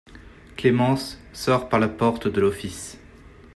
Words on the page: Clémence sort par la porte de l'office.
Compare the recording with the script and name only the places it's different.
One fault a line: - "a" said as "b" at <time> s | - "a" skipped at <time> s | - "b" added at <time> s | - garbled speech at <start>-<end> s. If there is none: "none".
none